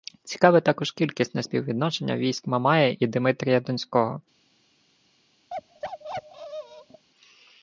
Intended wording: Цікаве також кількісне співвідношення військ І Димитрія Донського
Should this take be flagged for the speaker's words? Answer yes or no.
yes